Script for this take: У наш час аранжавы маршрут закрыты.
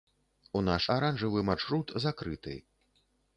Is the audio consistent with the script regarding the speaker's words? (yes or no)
no